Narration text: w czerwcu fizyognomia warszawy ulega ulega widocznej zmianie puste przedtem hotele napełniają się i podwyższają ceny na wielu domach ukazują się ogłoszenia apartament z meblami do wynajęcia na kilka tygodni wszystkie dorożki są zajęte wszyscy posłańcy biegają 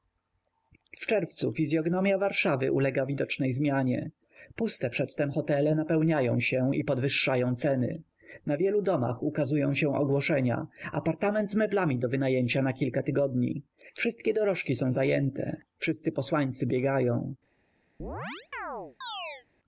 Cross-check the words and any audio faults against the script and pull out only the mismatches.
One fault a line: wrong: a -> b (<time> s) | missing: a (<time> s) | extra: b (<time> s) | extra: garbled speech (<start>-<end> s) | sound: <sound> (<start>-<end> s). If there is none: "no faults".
missing: ulega (3.0 s)
sound: chirp (18.0-19.5 s)